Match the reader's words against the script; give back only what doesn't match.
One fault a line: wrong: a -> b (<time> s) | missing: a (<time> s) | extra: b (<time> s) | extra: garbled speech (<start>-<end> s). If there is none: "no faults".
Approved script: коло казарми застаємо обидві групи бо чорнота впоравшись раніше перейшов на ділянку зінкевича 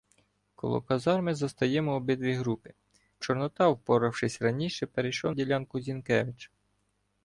missing: бо (2.7 s)
missing: на (5.3 s)